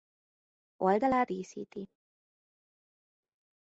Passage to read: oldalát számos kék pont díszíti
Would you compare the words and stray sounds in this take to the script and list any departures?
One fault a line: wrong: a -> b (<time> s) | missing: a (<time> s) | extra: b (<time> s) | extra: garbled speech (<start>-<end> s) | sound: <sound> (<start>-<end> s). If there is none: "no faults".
missing: számos kék pont (1.3 s)